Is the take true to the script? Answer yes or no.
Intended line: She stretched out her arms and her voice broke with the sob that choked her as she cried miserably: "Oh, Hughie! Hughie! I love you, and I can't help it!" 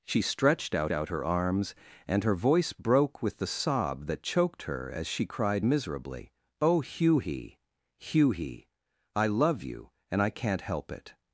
no